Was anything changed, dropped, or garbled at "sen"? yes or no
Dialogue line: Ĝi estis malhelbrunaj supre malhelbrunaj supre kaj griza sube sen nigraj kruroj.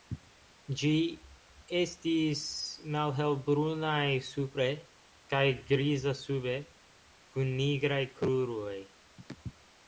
yes